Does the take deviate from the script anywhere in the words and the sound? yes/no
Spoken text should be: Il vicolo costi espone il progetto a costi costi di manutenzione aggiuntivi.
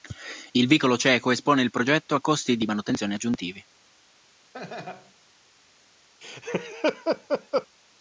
yes